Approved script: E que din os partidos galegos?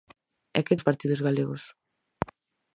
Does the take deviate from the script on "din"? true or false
true